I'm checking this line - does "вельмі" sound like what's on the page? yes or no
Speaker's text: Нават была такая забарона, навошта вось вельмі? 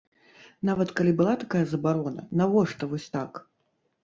no